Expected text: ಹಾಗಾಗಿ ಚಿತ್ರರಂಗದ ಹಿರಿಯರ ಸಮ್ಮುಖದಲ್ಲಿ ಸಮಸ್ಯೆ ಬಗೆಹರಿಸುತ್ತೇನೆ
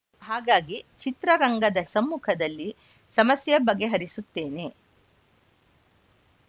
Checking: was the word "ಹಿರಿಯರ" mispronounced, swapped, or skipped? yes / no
yes